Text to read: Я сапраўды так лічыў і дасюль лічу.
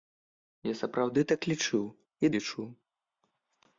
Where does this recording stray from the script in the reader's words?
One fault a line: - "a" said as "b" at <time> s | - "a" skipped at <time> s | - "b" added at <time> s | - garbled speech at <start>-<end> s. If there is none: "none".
- "дасюль" skipped at 2.3 s